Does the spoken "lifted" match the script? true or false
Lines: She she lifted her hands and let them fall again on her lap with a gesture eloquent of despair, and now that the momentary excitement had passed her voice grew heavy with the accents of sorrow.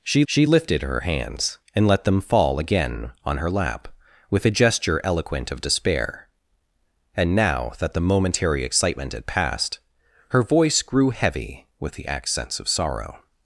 true